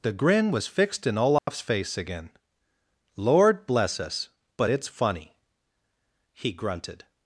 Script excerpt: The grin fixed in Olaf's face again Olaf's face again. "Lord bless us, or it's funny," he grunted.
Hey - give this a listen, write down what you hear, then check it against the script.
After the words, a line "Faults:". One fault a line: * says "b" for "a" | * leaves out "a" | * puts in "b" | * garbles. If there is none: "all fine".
The grin was fixed in Olaf's face again. "Lord bless us, but it's funny," he grunted.
Faults:
* puts in "was"
* leaves out "Olaf's face again"
* says "but" for "or"